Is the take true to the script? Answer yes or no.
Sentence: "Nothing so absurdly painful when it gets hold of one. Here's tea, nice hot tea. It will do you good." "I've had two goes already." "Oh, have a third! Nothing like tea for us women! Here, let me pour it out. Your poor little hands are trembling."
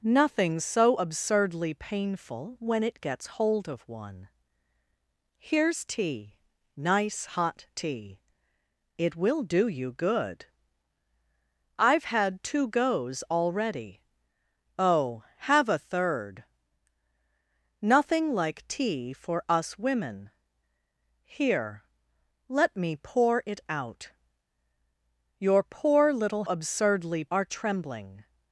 no